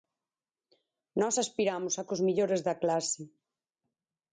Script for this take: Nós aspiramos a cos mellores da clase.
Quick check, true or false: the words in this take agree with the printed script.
true